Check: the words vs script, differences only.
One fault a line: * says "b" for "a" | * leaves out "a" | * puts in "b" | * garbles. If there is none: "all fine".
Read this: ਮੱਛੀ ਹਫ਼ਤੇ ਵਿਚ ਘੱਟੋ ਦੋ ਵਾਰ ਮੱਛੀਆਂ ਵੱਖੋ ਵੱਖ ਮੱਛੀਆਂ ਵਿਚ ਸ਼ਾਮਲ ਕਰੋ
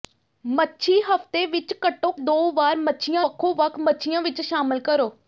all fine